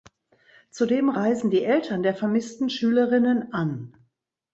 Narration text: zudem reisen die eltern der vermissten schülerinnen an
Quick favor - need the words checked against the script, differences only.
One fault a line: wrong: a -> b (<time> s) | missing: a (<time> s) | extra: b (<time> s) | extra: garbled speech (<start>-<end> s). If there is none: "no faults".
no faults